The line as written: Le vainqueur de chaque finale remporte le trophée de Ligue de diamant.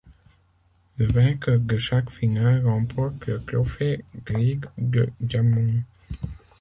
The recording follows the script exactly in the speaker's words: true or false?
true